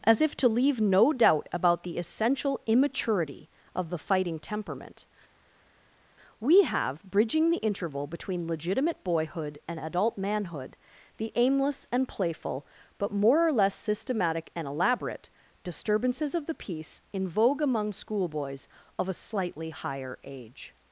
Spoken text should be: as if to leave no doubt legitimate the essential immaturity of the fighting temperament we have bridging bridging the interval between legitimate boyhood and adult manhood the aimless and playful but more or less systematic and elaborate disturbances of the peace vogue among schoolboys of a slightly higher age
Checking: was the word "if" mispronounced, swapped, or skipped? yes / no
no